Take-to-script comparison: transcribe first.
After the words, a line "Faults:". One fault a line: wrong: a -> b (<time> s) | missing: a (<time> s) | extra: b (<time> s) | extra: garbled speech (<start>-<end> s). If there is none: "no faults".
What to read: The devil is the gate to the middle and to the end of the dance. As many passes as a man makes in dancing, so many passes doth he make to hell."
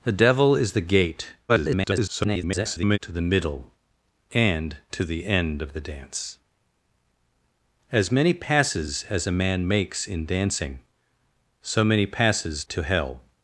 The devil is the gate [garbled] to the middle and to the end of the dance. As many passes as a man makes in dancing, so many passes to hell."
Faults:
extra: garbled speech (1.5-3.0 s)
missing: doth he make (12.6 s)